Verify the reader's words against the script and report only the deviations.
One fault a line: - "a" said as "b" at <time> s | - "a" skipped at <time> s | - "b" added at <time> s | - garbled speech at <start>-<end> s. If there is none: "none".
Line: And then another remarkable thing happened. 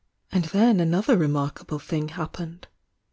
none